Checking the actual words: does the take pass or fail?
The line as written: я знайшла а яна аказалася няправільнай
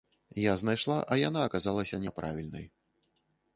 pass